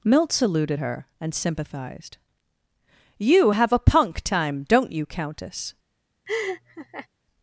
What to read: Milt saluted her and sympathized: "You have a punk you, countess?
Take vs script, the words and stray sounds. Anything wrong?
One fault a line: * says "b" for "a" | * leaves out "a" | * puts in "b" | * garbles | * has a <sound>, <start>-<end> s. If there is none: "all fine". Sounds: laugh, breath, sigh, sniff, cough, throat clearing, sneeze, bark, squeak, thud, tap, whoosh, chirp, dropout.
* puts in "time don't"
* has a laugh, 6.3-7.1 s